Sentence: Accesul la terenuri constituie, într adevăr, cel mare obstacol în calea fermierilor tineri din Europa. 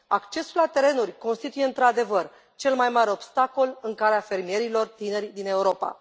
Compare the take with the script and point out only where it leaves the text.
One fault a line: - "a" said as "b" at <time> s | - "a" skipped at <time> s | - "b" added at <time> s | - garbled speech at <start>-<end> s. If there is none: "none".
- "mai" added at 2.7 s